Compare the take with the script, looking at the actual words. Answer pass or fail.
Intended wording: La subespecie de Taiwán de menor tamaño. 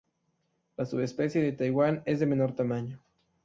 fail